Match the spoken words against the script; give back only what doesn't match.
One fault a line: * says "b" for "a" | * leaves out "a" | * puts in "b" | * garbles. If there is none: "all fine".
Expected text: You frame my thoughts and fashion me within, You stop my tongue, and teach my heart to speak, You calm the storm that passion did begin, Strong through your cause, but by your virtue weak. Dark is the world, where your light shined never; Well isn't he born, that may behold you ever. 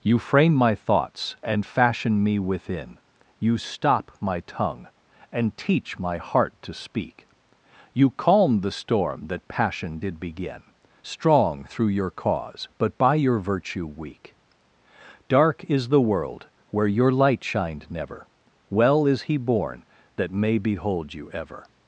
* says "is" for "isn't"